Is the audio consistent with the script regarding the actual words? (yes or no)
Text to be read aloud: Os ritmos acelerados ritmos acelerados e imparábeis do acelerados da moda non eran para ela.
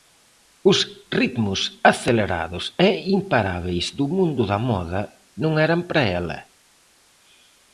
no